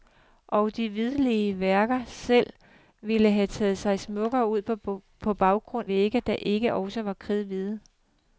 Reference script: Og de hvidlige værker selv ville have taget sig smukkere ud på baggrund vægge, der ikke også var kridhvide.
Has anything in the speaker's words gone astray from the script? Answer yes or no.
no